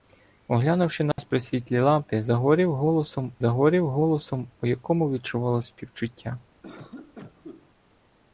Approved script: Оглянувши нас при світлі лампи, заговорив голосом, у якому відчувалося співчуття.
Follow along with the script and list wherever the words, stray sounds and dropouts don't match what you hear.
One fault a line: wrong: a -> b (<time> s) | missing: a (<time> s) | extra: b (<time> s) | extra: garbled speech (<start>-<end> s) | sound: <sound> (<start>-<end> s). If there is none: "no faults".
sound: dropout (1.1-1.2 s)
extra: заговорив голосом (3.4 s)
sound: cough (6.6-7.7 s)